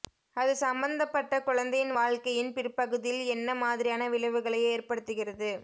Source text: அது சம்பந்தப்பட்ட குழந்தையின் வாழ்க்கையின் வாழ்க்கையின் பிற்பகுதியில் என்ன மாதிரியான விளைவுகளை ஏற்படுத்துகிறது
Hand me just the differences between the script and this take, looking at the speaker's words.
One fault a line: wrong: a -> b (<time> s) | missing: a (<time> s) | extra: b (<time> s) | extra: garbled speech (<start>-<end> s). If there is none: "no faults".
missing: வாழ்க்கையின் (2.5 s)